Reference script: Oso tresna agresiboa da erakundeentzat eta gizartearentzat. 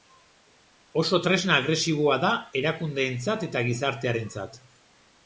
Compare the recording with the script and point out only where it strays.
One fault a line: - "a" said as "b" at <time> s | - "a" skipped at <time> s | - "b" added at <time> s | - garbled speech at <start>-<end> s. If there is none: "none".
none